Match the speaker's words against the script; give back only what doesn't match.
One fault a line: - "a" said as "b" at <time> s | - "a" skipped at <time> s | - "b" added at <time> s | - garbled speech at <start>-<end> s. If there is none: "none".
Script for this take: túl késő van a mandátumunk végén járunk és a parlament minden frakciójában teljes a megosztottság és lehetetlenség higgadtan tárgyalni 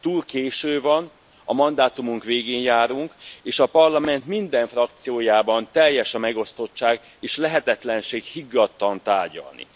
none